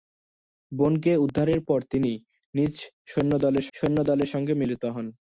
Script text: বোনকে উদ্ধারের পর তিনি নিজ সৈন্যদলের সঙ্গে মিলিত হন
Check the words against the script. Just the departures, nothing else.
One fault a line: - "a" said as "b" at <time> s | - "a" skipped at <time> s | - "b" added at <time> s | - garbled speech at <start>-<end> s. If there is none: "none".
- "সৈন্যদলের" added at 3.8 s